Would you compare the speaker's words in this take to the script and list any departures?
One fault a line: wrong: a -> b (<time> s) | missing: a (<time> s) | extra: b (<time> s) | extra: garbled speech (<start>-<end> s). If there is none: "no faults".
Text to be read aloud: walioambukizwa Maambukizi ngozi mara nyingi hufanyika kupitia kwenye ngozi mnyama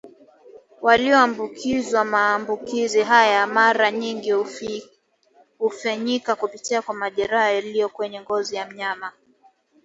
wrong: ngozi -> haya (3.0 s)
extra: kwa majeraha yaliyo (6.8 s)
extra: ya (8.6 s)